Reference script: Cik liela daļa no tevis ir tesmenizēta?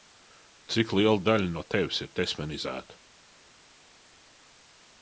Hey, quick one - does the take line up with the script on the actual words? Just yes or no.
yes